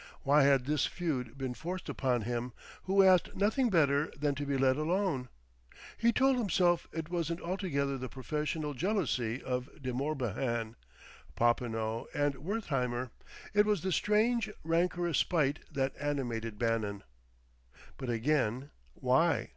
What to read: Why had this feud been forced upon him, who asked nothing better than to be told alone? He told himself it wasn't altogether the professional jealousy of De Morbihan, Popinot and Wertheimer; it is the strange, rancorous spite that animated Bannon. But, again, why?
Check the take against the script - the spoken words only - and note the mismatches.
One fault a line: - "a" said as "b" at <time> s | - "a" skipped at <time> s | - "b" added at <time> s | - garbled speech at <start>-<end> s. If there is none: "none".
- "told" said as "let" at 4.6 s
- "is" said as "was" at 13.7 s